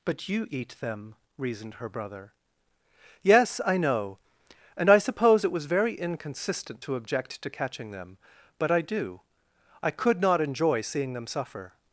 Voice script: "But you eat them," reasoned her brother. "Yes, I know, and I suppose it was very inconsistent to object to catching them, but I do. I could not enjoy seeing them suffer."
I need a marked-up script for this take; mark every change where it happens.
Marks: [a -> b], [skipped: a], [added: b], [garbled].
"But you eat them," reasoned her brother. "Yes, I know, and I suppose it was very inconsistent to object to catching them, but I do. I could not enjoy seeing them suffer."